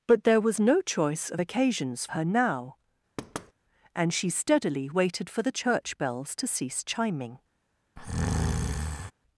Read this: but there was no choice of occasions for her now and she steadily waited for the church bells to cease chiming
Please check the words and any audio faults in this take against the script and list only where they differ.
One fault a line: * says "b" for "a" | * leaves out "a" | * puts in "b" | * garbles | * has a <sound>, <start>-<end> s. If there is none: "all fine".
* leaves out "for"
* has a thud, 3.2-3.5 s
* has a breath, 8.0-9.1 s